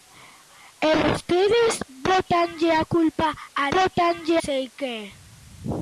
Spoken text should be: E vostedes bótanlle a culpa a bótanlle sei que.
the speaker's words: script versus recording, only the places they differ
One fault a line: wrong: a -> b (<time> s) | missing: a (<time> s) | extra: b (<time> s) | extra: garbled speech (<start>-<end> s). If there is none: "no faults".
no faults